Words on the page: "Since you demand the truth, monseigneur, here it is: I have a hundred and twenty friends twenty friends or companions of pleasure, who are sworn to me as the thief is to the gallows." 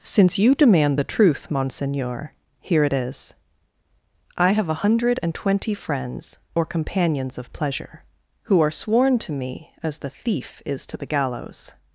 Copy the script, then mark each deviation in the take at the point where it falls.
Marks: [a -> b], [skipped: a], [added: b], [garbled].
"Since you demand the truth, monseigneur, here it is: I have a hundred and twenty friends [skipped: twenty friends] or companions of pleasure, who are sworn to me as the thief is to the gallows."